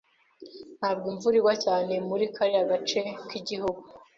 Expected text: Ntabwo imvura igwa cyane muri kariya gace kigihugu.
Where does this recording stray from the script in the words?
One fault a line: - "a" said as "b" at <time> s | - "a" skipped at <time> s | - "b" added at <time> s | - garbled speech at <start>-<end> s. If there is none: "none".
none